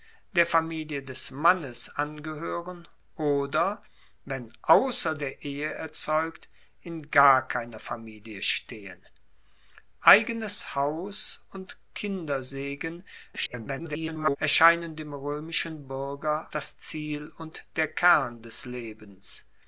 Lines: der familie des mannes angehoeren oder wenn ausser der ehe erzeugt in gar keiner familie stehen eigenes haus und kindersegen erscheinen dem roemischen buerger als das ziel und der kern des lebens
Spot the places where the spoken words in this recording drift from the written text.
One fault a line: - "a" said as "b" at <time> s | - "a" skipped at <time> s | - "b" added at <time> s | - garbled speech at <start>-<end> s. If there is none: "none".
- garbled speech at 13.3-14.4 s
- "als" skipped at 16.5 s